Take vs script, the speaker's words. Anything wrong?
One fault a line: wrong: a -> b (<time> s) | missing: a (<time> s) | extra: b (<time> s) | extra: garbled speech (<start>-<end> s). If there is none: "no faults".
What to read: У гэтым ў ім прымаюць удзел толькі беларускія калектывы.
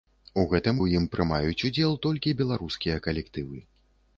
no faults